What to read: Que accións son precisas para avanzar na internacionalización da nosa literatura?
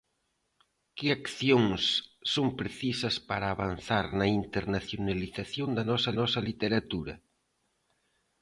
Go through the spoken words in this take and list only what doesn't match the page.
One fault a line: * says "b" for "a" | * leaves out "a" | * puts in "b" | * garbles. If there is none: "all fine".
* puts in "nosa"